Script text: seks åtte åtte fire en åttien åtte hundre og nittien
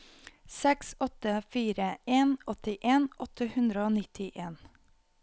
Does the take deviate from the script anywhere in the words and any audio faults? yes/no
yes